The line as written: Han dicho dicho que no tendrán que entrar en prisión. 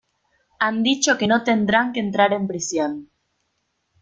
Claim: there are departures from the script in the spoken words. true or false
true